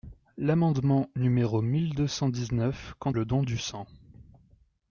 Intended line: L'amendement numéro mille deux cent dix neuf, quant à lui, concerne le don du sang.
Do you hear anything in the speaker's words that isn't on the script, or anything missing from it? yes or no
yes